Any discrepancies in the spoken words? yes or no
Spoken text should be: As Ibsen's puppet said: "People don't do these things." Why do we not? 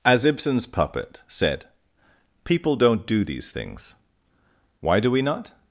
no